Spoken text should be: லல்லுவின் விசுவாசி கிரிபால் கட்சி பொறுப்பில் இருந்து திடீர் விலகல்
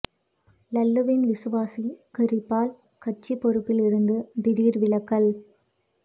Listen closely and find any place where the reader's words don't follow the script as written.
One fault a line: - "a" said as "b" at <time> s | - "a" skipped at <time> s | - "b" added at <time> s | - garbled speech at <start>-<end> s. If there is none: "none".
none